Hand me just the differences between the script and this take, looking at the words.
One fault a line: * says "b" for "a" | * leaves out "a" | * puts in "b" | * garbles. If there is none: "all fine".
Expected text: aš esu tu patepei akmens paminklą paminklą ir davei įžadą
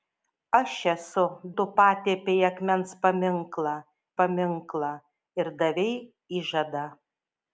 all fine